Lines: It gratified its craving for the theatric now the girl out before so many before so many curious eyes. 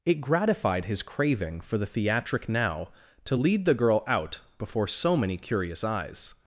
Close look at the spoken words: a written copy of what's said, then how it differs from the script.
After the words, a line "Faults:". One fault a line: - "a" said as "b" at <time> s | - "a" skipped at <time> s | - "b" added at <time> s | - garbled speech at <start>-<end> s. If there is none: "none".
It gratified his craving for the theatric now to lead the girl out before so many curious eyes.
Faults:
- "its" said as "his" at 0.8 s
- "to lead" added at 3.2 s
- "before so many" skipped at 5.4 s